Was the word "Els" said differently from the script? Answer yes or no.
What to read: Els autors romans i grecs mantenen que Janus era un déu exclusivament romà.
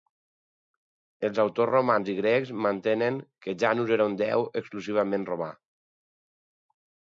no